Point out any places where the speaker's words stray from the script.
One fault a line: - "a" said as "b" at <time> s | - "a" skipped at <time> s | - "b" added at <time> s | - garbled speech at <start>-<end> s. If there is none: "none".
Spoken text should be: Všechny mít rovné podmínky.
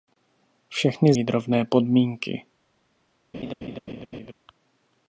none